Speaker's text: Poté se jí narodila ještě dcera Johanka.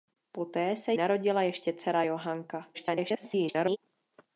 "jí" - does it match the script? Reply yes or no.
no